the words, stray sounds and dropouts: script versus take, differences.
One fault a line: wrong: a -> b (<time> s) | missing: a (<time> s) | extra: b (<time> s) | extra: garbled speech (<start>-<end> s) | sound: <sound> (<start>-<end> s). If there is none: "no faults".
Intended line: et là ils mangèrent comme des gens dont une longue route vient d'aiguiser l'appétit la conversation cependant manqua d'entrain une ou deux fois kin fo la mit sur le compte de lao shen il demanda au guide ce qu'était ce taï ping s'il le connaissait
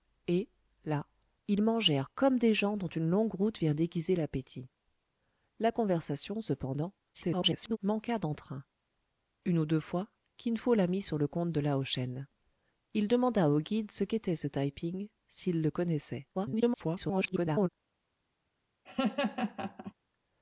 extra: garbled speech (7.1-7.8 s)
extra: garbled speech (16.3-17.7 s)
sound: laugh (18.8-19.9 s)